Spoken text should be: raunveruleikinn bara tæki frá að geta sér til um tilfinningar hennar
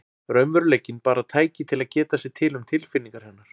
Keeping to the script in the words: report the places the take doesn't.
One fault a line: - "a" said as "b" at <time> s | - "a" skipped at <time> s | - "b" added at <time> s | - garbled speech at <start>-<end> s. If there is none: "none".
- "frá" said as "til" at 1.7 s